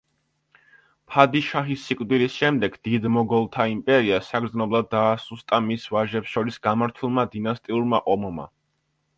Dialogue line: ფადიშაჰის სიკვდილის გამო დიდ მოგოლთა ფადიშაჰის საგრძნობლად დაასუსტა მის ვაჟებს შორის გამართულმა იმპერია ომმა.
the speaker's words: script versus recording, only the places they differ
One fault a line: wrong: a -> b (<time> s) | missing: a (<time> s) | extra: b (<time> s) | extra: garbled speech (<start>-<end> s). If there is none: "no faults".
wrong: გამო -> შემდეგ (2.4 s)
wrong: ფადიშაჰის -> იმპერია (3.7 s)
wrong: იმპერია -> დინასტიურმა (7.3 s)